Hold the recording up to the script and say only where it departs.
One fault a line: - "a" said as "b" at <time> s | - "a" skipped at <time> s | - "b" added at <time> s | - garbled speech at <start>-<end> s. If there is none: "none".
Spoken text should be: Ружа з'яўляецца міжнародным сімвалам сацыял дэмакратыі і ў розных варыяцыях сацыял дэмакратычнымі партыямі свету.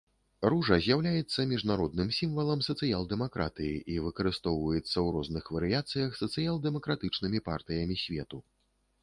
- "выкарыстоўваецца" added at 4.1 s